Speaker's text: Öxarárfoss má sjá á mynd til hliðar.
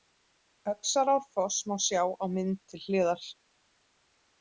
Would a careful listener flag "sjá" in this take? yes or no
no